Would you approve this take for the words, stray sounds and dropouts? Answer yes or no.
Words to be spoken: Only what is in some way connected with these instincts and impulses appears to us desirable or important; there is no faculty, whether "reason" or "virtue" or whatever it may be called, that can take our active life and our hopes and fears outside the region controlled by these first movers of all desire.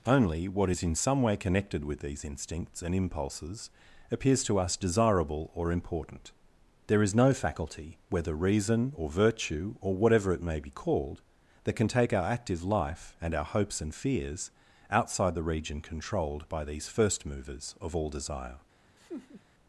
no